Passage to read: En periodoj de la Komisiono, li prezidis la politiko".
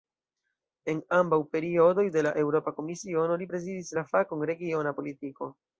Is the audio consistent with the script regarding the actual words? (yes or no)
no